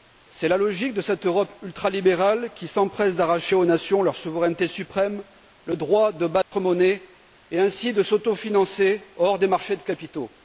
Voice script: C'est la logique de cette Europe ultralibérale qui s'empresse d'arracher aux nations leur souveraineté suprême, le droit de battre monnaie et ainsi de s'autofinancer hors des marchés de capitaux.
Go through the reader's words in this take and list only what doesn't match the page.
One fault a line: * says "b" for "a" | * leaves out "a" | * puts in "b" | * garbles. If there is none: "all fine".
all fine